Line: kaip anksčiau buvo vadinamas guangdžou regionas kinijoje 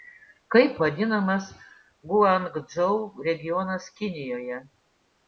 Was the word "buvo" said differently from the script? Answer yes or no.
yes